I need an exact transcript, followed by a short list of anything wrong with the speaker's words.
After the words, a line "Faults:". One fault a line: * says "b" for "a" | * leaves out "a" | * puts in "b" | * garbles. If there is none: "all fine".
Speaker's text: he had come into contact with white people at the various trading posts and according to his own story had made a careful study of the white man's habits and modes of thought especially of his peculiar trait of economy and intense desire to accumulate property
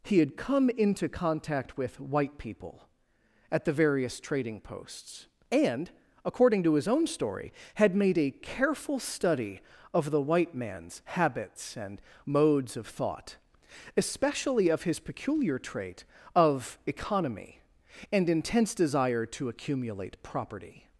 he had come into contact with white people at the various trading posts and according to his own story had made a careful study of the white man's habits and modes of thought especially of his peculiar trait of economy and intense desire to accumulate property
Faults:
all fine